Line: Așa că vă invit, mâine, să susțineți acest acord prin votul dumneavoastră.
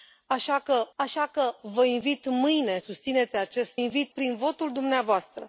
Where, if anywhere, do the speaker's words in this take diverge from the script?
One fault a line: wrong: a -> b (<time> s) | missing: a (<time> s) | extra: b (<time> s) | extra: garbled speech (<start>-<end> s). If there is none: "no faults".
extra: așa că (0.9 s)
missing: să (2.8 s)
wrong: acord -> invit (3.7 s)